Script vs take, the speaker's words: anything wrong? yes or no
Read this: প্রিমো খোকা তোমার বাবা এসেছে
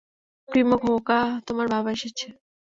no